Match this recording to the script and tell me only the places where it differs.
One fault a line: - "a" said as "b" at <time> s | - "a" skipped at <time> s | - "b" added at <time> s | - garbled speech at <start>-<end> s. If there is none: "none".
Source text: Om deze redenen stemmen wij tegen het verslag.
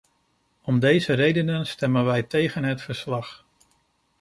none